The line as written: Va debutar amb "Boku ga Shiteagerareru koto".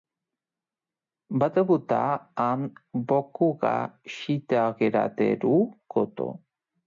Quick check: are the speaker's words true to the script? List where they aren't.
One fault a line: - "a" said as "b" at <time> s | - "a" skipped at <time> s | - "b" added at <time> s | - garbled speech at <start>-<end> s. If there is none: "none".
none